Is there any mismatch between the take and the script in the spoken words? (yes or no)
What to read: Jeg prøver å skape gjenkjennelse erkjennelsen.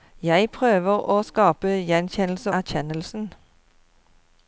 no